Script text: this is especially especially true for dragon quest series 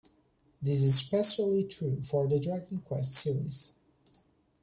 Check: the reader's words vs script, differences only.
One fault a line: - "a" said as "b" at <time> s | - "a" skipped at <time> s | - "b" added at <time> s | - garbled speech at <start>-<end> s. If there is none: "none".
- "especially" skipped at 1.7 s
- "the" added at 2.3 s